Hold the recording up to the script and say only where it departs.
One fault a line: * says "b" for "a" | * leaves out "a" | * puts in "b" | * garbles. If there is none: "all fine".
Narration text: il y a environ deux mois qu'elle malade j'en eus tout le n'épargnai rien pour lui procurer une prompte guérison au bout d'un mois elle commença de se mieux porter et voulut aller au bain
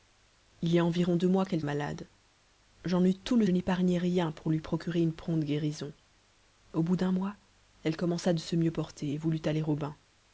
all fine